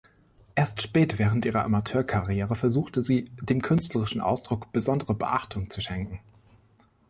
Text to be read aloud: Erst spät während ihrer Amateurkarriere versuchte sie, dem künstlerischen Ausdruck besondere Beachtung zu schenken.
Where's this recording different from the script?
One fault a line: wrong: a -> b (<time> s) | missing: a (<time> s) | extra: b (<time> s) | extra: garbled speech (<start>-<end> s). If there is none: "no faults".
no faults